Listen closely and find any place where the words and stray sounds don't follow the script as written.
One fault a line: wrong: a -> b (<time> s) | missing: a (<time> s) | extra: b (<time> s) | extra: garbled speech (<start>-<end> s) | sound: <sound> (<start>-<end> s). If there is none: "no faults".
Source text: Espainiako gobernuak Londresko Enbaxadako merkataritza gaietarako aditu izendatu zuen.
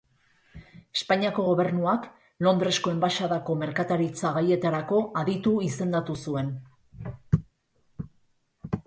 no faults